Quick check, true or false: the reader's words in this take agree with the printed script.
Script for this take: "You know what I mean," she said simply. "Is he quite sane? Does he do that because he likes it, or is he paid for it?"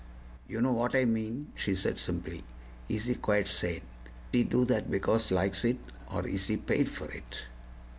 false